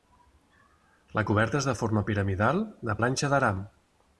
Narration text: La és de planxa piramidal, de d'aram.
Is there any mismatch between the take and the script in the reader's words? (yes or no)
yes